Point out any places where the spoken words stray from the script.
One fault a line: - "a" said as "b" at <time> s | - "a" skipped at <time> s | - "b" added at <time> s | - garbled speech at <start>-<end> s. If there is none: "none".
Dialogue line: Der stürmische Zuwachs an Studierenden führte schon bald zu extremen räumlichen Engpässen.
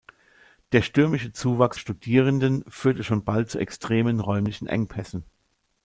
- "an" skipped at 1.8 s